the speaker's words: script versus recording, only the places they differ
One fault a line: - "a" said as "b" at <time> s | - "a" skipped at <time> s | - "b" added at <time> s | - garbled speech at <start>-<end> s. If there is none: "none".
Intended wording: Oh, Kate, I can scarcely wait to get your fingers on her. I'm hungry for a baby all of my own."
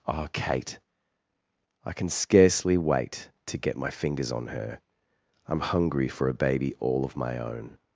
- "your" said as "my" at 3.8 s